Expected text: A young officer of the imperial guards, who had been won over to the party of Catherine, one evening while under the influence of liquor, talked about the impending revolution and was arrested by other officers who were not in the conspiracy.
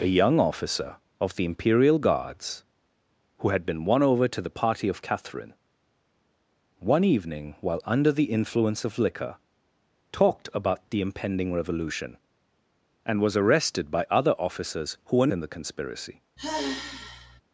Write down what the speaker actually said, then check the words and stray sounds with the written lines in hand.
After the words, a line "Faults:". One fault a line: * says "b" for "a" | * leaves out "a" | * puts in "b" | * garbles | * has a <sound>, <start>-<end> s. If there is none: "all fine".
A young officer of the imperial guards, who had been won over to the party of Catherine, one evening while under the influence of liquor, talked about the impending revolution and was arrested by other officers who were in the conspiracy.
Faults:
* leaves out "not"
* has a sigh, 16.4-17.4 s